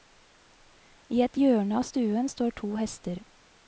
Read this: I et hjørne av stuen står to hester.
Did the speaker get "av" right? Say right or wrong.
right